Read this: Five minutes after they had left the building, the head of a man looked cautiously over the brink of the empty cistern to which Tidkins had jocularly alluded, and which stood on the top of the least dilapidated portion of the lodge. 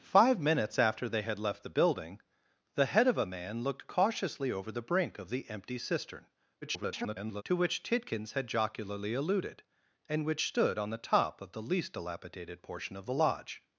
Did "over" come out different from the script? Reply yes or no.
no